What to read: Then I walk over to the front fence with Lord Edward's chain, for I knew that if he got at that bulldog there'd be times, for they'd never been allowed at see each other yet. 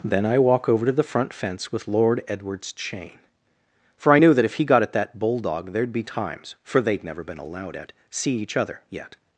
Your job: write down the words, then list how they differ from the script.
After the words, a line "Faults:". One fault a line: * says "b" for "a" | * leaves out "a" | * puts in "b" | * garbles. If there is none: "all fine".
Then I walk over to the front fence with Lord Edward's chain, for I knew that if he got at that bulldog there'd be times, for they'd never been allowed at see each other yet.
Faults:
all fine